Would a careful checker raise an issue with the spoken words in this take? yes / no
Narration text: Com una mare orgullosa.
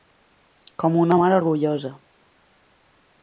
no